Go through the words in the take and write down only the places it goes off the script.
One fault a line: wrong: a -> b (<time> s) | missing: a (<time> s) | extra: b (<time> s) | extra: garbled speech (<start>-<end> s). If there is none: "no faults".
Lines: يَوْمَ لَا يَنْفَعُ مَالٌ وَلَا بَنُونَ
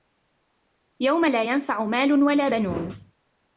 no faults